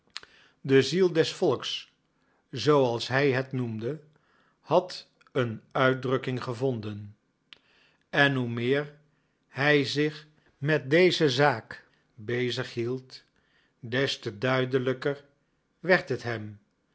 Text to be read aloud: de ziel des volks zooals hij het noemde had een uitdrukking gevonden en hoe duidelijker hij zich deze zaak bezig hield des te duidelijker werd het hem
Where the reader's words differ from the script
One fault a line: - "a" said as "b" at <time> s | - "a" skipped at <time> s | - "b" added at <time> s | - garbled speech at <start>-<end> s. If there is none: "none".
- "duidelijker" said as "meer" at 8.5 s
- "met" added at 10.6 s